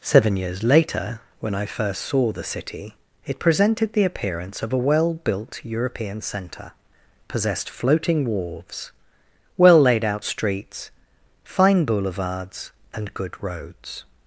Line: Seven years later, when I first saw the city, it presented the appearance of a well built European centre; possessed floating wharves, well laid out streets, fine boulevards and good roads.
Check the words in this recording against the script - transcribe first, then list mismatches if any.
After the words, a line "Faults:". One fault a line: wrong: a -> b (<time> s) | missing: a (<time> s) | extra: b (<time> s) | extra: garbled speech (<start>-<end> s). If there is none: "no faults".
Seven years later, when I first saw the city, it presented the appearance of a well built European centre; possessed floating wharves, well laid out streets, fine boulevards and good roads.
Faults:
no faults